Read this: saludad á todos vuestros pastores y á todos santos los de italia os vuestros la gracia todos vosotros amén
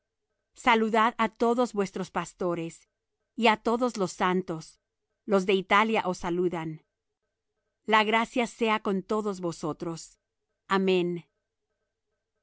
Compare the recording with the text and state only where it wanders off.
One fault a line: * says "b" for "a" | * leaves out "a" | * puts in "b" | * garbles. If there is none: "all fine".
* puts in "los"
* says "saludan" for "vuestros"
* puts in "sea con"